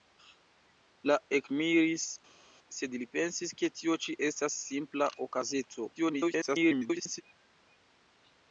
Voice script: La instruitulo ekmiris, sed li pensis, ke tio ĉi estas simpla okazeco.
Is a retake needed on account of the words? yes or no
yes